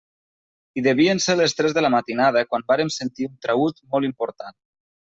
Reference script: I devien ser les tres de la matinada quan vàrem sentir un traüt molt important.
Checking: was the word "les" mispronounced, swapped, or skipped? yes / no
no